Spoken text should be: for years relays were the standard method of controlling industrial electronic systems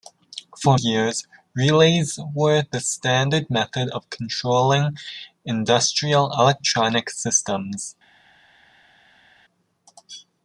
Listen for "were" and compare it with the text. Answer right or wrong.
right